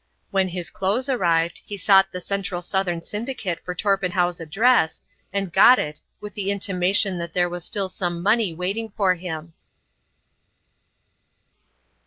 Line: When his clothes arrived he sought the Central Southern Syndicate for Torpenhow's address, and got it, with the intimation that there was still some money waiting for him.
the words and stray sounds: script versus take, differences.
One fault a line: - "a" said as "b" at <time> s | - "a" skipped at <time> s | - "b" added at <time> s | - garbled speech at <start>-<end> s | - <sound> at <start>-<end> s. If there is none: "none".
none